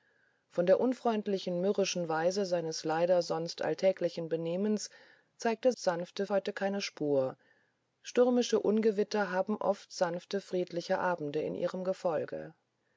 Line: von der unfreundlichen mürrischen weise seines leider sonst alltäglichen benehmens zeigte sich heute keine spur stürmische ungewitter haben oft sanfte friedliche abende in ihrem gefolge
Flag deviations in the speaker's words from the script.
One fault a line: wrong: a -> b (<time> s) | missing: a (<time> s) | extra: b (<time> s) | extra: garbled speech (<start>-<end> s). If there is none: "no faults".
wrong: sich -> sanfte (5.8 s)